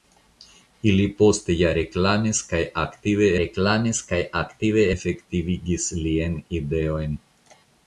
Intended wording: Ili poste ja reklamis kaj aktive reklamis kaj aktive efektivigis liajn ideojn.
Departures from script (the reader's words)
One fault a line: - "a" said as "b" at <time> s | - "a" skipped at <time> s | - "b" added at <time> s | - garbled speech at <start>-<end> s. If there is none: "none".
none